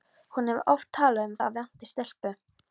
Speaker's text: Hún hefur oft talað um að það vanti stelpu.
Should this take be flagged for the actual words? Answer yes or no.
no